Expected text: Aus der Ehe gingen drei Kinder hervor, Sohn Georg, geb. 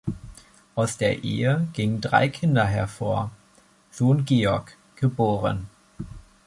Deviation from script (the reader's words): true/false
false